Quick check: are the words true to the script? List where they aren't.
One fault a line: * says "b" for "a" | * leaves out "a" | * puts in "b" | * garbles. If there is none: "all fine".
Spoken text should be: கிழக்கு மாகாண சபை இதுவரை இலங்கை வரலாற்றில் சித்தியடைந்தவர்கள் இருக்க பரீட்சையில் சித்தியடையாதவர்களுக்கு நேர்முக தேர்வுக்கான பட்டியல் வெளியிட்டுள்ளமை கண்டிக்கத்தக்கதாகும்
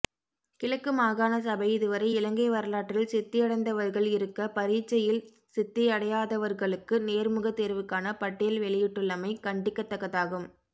all fine